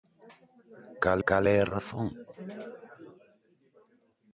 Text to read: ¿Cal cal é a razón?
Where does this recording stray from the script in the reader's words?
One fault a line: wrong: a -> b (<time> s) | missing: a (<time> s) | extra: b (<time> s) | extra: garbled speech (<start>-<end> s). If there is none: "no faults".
no faults